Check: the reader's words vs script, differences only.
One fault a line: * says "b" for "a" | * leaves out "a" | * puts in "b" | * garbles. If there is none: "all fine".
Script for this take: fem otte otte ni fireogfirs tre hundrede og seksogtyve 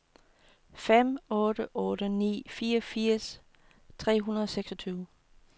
all fine